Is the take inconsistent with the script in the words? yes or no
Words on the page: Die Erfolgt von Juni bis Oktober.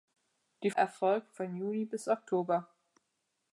no